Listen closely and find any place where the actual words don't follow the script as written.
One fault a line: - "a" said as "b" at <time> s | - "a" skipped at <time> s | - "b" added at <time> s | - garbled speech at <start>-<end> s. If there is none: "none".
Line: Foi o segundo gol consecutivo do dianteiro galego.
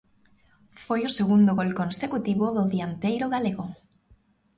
none